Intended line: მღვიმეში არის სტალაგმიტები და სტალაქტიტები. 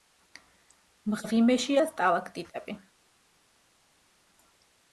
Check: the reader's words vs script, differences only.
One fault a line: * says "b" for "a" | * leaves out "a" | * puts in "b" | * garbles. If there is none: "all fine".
* leaves out "არის სტალაგმიტები"